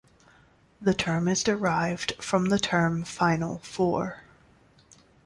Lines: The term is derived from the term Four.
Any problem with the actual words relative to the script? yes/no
yes